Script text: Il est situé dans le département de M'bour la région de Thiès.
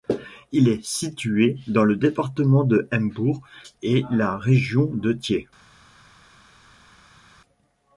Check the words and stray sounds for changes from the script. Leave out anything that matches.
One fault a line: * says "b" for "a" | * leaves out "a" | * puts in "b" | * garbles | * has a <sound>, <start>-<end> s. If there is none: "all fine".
* puts in "et"